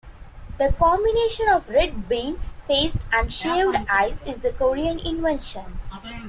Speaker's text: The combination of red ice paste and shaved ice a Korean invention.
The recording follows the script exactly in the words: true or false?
false